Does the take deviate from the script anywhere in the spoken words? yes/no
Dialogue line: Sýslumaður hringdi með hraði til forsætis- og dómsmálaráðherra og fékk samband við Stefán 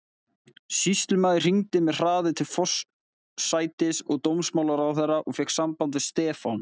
no